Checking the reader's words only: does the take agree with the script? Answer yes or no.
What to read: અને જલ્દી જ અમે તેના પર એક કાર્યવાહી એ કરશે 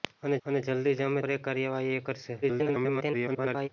no